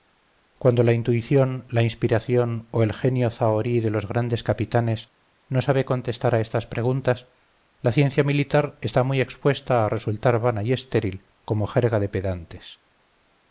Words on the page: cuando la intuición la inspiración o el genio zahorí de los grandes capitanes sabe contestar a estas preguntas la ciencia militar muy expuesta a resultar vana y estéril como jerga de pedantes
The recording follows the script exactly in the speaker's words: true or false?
false